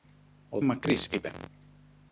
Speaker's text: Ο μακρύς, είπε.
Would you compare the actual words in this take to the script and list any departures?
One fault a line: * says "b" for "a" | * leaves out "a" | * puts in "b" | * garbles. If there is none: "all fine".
all fine